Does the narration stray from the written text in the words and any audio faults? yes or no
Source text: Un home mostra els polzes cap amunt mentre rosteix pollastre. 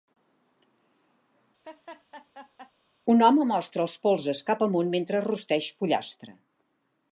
yes